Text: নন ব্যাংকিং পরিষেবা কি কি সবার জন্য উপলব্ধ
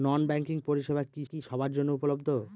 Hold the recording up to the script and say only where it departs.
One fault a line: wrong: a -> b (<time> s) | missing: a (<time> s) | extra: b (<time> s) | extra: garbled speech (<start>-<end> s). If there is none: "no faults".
no faults